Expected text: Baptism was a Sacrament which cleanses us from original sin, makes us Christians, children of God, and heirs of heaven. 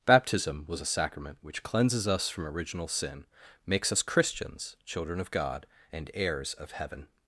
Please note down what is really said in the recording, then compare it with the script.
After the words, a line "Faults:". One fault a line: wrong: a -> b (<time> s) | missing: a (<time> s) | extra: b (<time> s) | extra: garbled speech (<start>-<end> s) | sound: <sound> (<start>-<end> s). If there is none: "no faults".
Baptism was a Sacrament which cleanses us from original sin, makes us Christians, children of God, and heirs of heaven.
Faults:
no faults